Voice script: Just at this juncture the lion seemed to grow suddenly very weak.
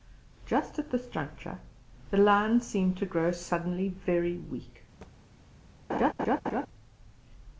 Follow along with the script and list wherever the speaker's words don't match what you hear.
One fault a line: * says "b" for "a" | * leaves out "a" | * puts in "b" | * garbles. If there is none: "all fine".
all fine